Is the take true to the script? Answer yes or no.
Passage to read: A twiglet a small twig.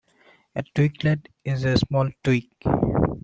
no